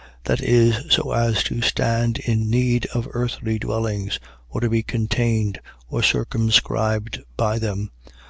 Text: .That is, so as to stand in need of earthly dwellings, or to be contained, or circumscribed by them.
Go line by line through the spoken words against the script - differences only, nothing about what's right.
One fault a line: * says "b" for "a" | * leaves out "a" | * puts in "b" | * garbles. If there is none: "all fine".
all fine